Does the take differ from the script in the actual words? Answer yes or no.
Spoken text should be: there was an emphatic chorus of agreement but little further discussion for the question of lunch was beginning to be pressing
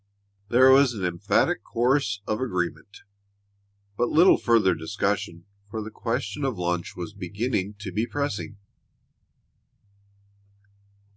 no